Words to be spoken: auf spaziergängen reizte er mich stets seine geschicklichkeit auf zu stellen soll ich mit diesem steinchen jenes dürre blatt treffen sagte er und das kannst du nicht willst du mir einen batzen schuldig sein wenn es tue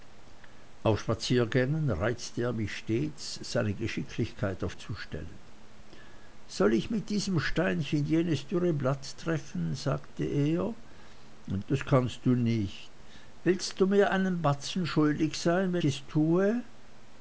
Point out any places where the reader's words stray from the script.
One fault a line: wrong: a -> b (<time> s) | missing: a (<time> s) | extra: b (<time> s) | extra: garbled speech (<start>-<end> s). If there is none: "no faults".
no faults